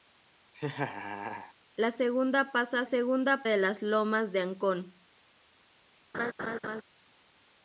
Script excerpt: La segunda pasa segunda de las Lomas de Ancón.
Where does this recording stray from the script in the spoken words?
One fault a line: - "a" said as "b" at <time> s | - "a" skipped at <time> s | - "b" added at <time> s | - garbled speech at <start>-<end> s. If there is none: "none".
none